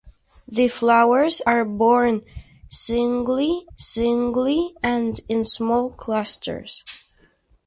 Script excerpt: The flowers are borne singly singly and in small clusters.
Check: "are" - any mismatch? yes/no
no